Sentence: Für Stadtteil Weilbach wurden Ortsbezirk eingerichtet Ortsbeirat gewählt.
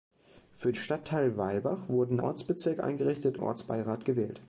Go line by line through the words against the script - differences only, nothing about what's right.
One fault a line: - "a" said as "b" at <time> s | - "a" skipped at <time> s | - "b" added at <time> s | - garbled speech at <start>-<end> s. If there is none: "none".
none